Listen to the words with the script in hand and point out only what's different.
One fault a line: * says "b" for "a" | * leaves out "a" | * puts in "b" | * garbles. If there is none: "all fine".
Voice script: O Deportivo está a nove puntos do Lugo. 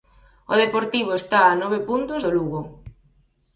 all fine